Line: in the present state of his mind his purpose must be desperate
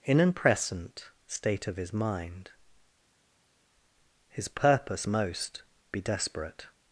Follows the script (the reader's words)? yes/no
no